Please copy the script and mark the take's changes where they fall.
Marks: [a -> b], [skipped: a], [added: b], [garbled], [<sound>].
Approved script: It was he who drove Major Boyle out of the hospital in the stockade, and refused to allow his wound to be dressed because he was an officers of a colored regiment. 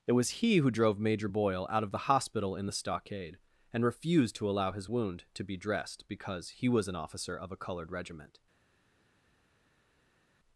It was he who drove Major Boyle out of the hospital in the stockade, and refused to allow his wound to be dressed because he was an [officers -> officer] of a colored regiment.